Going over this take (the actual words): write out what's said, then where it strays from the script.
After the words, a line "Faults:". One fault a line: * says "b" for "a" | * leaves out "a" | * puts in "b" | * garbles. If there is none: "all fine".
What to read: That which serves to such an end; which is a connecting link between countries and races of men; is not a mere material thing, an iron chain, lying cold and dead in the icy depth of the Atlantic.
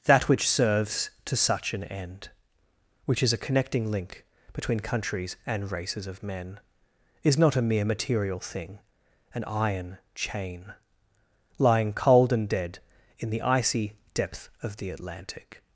That which serves to such an end; which is a connecting link between countries and races of men; is not a mere material thing, an iron chain, lying cold and dead in the icy depth of the Atlantic.
Faults:
all fine